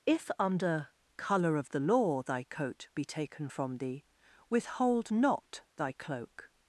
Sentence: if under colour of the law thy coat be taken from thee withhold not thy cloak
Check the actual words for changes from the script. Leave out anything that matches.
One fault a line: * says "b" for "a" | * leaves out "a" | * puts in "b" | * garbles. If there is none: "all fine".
all fine